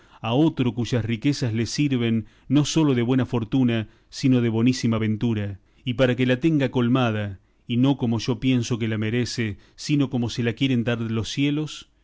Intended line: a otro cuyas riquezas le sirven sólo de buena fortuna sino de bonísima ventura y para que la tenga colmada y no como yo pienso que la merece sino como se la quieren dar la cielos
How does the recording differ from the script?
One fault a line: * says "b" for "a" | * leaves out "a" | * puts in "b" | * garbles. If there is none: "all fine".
* puts in "no"
* says "los" for "la"